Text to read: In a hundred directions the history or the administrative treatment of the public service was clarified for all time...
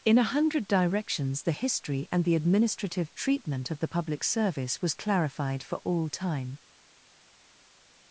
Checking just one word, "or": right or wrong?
wrong